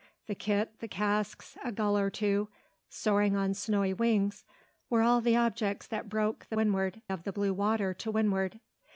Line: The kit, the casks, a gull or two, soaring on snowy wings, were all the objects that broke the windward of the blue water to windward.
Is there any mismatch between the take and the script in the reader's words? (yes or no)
no